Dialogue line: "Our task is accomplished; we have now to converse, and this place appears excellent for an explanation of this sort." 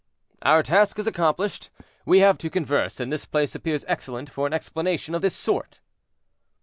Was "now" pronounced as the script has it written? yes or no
no